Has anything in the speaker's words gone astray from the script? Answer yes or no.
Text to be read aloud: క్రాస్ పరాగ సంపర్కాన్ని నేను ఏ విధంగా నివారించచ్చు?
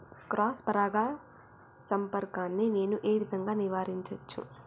no